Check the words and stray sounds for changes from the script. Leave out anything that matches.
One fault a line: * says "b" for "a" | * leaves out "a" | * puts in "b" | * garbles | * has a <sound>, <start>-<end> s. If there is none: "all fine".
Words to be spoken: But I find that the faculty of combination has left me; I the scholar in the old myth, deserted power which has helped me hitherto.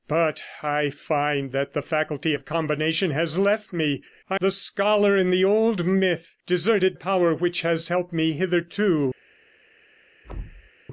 * has a thud, 10.2-10.7 s